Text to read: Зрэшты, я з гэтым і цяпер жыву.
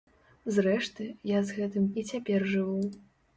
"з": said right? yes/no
yes